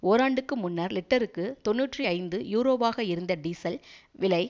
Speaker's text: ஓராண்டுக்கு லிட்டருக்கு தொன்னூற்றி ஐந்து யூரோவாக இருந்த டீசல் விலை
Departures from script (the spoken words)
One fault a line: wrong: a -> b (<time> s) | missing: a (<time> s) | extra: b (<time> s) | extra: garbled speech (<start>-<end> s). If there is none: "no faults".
extra: முன்னர் (0.6 s)